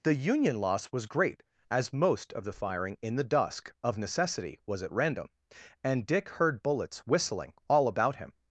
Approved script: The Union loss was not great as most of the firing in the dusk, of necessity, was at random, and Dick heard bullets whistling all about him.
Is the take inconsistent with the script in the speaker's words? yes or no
yes